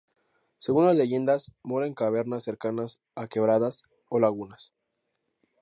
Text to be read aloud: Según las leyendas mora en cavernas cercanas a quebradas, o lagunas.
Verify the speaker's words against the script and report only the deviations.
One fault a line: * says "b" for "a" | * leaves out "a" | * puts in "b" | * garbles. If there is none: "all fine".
all fine